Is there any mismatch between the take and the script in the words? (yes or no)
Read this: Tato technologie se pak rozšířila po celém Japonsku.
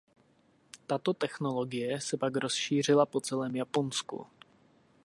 no